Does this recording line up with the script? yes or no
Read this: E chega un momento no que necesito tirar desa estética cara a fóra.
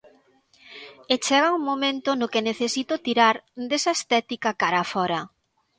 yes